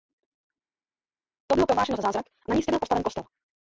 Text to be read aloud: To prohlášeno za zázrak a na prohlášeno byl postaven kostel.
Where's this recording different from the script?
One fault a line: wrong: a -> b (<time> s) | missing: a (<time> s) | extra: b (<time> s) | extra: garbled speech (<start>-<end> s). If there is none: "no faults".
extra: bylo (1.5 s)
wrong: prohlášeno -> místě (2.5 s)